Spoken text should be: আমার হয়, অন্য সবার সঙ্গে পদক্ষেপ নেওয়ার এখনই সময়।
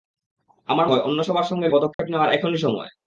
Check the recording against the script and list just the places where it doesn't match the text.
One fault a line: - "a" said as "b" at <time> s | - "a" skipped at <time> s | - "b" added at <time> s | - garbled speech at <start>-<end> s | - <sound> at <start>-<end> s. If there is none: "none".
- dropout at 1.9-2.0 s